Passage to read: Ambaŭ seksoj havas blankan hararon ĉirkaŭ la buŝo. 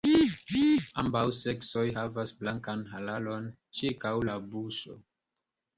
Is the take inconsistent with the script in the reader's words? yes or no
no